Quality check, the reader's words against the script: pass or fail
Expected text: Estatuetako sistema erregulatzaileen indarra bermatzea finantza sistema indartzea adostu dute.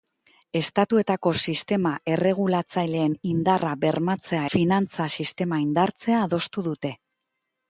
pass